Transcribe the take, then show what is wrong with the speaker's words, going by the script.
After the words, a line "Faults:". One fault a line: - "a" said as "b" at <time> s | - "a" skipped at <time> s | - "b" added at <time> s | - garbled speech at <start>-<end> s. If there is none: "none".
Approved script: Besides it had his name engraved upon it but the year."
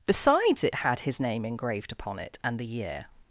Besides it had his name engraved upon it and the year."
Faults:
- "but" said as "and" at 2.4 s